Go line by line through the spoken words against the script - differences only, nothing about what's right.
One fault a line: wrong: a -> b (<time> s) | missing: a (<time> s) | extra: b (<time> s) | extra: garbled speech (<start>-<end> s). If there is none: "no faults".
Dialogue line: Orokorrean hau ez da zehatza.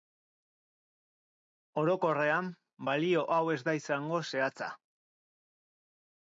extra: balio (2.9 s)
extra: izango (3.8 s)